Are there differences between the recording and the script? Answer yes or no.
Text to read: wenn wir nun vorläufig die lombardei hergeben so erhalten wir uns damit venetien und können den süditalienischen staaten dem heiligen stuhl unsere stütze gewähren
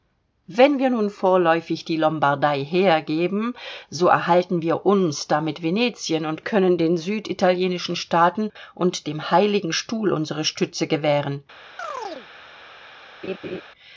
yes